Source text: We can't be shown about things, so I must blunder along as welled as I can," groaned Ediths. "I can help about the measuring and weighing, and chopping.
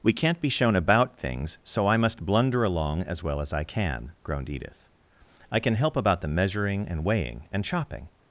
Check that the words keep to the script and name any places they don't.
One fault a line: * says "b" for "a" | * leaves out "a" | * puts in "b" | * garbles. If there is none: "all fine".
* says "well" for "welled"
* says "Edith" for "Ediths"